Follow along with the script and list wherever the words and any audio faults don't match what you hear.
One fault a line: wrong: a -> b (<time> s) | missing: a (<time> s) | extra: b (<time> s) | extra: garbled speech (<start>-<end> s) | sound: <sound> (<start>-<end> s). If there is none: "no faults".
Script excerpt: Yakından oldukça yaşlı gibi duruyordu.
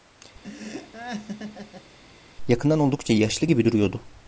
sound: laugh (0.4-2.0 s)